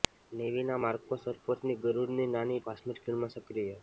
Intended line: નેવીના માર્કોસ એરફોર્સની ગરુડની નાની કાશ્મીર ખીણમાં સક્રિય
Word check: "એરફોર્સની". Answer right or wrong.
right